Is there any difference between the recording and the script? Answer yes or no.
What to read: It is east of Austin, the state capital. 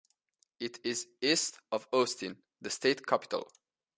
no